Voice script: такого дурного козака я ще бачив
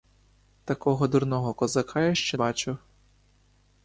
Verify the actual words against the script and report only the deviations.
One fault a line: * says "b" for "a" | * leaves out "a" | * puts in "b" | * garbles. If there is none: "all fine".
all fine